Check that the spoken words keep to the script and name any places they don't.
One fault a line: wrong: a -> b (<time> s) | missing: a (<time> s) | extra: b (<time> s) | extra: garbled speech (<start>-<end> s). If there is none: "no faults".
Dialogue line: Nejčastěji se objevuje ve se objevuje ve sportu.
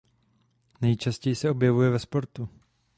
missing: se objevuje ve (2.0 s)